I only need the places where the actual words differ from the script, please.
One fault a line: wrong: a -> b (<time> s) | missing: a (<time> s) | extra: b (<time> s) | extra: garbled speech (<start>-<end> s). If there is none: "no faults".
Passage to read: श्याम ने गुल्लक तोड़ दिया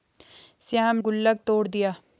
missing: ने (1.0 s)